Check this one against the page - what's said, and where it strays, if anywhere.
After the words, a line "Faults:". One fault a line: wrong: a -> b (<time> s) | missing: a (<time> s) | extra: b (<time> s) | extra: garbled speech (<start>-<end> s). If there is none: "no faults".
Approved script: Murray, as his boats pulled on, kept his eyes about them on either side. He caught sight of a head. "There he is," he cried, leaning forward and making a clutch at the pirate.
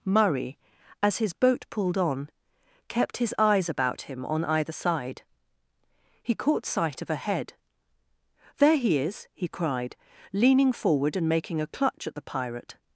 Murray, as his boat pulled on, kept his eyes about him on either side. He caught sight of a head. "There he is," he cried, leaning forward and making a clutch at the pirate.
Faults:
wrong: boats -> boat (1.3 s)
wrong: them -> him (4.0 s)